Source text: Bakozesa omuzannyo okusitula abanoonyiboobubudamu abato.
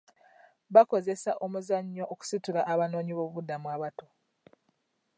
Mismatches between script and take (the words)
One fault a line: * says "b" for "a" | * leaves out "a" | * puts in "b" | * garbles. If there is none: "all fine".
all fine